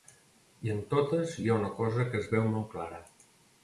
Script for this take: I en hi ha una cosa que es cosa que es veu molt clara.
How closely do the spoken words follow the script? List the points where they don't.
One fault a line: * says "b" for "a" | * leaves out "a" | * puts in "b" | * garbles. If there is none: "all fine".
* puts in "totes"
* leaves out "cosa que es"